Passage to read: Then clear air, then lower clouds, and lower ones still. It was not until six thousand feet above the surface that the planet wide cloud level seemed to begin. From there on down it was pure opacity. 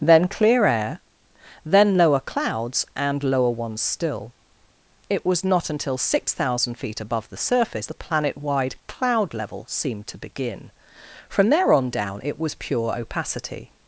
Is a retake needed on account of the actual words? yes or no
yes